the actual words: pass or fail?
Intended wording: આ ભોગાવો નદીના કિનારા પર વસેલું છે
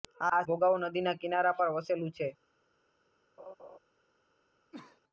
pass